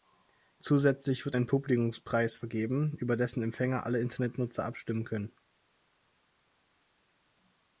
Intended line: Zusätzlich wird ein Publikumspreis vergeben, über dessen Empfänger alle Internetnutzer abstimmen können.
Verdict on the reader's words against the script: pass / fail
pass